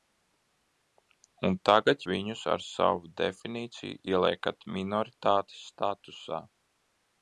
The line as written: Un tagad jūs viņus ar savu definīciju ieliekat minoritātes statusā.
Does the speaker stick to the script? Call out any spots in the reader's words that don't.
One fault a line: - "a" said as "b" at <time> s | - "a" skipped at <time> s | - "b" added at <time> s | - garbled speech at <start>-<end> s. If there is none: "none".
- "jūs" skipped at 2.0 s